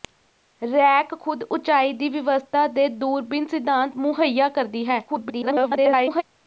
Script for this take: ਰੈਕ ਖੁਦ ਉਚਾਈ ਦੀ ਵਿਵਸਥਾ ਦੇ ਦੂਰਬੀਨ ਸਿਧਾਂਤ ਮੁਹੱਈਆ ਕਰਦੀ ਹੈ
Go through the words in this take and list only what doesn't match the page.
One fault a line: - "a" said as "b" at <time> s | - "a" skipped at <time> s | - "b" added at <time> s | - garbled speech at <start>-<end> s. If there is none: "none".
- garbled speech at 5.1-6.2 s